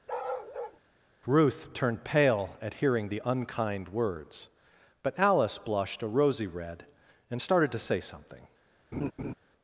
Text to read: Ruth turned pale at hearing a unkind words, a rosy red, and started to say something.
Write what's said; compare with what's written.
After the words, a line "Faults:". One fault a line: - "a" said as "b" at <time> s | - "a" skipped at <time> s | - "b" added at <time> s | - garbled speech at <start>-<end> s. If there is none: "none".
Ruth turned pale at hearing the unkind words, but Alice blushed a rosy red, and started to say something.
Faults:
- "a" said as "the" at 3.1 s
- "but Alice blushed" added at 5.0 s